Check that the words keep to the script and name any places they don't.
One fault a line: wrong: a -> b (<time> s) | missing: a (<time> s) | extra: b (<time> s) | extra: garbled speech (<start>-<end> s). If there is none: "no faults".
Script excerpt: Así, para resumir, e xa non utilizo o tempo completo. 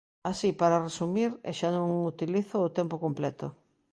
no faults